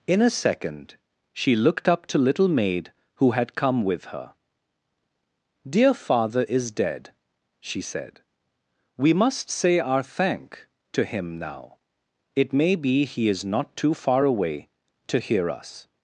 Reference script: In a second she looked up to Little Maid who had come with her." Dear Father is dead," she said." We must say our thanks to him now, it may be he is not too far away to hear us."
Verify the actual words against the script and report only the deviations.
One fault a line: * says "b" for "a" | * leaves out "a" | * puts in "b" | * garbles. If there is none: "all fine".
* says "thank" for "thanks"